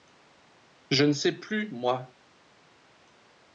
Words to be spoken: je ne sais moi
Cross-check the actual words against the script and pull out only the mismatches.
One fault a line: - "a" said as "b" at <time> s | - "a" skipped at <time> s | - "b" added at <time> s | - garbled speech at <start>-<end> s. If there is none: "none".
- "plus" added at 1.4 s